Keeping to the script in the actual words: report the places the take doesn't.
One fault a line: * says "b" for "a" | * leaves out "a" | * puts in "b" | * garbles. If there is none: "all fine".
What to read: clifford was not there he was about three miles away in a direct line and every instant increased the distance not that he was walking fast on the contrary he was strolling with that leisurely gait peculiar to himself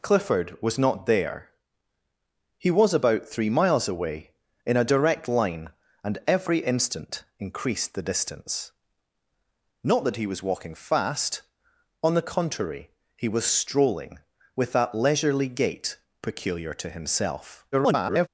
* garbles